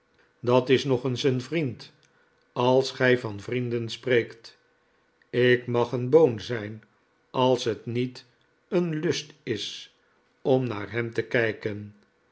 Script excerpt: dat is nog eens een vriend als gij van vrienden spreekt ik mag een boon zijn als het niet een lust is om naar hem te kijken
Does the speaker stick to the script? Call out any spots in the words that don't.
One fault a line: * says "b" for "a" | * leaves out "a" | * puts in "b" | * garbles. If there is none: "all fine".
all fine